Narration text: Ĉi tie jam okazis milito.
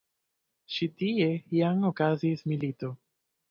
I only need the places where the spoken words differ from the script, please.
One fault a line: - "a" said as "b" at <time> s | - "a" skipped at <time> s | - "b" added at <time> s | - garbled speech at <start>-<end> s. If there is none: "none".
none